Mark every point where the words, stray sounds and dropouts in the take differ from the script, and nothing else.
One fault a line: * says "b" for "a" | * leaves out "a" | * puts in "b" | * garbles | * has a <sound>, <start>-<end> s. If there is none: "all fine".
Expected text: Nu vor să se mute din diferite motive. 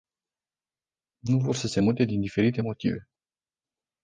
all fine